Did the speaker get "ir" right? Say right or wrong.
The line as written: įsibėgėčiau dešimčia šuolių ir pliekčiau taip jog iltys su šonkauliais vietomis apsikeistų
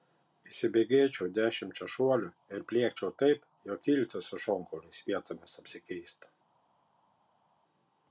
right